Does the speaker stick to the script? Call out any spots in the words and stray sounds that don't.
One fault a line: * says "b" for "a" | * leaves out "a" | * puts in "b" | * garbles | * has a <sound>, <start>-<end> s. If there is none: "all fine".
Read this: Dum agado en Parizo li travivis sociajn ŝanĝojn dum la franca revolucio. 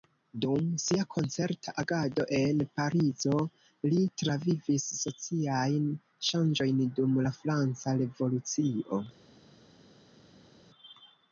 * puts in "sia koncerta"